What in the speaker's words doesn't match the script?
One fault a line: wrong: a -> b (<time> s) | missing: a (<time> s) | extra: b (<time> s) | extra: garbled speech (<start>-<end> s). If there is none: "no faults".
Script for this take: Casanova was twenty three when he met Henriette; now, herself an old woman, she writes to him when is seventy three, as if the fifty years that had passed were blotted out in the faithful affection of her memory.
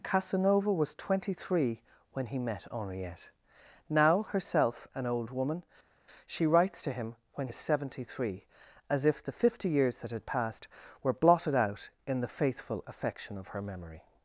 no faults